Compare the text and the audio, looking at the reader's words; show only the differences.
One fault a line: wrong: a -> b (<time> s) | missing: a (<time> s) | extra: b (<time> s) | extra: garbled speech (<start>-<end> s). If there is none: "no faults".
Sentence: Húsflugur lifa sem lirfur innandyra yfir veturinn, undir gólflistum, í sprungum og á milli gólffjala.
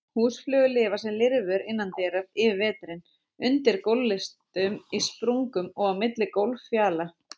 no faults